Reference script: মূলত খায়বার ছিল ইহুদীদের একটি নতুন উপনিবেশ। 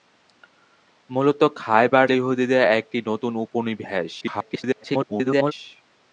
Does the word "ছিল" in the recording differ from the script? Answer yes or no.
yes